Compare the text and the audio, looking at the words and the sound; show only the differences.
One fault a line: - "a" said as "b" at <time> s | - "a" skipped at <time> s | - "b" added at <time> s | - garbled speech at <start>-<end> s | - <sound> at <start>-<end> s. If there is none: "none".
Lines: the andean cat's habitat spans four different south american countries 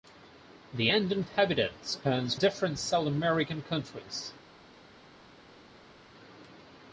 - "cat's" skipped at 1.2 s
- "four" skipped at 2.4 s